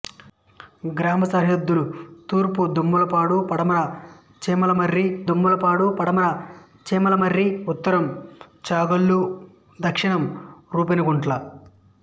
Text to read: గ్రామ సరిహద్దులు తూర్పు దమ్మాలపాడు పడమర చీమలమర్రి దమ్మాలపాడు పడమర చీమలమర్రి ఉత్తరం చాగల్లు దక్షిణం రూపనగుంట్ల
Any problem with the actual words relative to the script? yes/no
no